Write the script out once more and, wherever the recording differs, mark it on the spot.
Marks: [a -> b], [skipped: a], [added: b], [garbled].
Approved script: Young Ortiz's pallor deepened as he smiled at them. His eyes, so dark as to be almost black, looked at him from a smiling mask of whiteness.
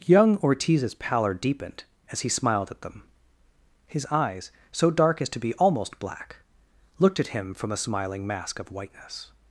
Young Ortiz's pallor deepened as he smiled at them. His eyes, so dark as to be almost black, looked at him from a smiling mask of whiteness.